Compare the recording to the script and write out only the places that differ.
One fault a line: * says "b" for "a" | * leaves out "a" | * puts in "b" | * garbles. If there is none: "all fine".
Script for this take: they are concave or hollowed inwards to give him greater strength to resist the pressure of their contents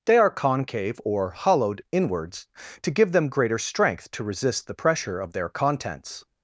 * says "them" for "him"